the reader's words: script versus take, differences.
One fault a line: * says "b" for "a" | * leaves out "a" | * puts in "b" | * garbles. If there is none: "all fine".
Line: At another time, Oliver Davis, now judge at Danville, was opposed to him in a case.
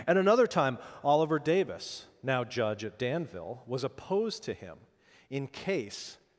* leaves out "a"